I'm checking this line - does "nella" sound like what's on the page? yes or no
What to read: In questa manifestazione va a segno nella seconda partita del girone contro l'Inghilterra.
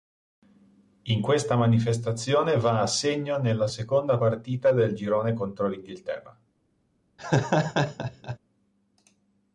yes